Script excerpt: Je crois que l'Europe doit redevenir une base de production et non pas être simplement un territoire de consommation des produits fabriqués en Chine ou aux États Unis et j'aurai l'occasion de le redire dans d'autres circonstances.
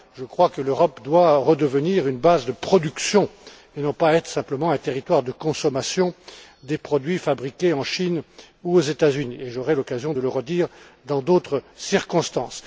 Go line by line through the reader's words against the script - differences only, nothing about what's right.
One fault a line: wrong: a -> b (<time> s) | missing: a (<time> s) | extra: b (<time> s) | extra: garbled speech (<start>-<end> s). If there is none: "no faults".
no faults